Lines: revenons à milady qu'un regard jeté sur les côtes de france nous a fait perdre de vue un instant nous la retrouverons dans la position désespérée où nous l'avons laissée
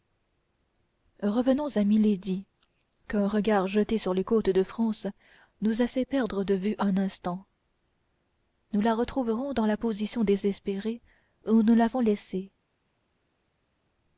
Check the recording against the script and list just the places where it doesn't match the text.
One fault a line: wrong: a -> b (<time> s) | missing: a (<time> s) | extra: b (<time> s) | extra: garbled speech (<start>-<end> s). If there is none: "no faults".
no faults